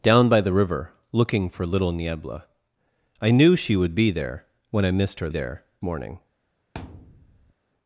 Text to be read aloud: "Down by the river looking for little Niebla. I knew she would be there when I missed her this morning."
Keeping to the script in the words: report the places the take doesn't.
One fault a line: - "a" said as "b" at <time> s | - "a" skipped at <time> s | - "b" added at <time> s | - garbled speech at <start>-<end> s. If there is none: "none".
- "this" said as "there" at 5.3 s